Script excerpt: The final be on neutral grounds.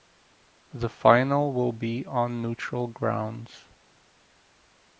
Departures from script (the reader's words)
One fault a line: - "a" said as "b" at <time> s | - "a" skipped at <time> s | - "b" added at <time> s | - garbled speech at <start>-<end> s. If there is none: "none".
- "will" added at 1.5 s